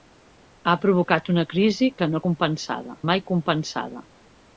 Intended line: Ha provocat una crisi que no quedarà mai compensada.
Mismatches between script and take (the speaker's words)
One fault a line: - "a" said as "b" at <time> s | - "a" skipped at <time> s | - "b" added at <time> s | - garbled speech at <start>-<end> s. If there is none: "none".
- "quedarà" said as "compensada" at 2.3 s